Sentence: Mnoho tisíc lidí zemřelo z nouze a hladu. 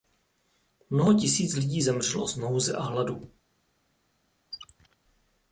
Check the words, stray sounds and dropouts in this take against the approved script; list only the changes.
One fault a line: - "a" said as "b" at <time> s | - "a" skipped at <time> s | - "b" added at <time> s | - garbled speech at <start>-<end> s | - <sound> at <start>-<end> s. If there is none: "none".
- squeak at 4.5-5.0 s